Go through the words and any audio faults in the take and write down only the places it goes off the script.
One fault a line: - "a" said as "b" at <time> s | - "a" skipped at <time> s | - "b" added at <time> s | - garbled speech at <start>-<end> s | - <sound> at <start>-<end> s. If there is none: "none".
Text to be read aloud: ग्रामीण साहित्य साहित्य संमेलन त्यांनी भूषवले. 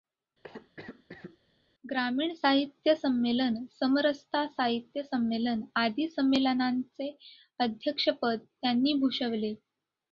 - cough at 0.4-1.4 s
- "संमेलन समरसता" added at 2.9 s
- "आदी संमेलनांचे अध्यक्षपद" added at 5.8 s